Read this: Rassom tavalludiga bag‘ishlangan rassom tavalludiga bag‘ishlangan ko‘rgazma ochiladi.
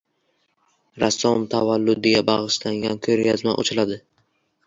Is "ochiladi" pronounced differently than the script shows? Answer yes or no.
no